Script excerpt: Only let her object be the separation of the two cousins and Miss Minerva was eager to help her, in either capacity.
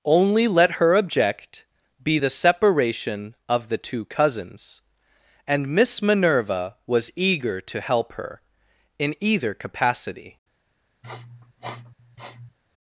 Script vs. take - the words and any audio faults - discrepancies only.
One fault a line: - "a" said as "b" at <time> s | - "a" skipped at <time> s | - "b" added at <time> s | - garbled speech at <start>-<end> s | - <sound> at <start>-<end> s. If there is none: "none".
- sniff at 11.0-12.6 s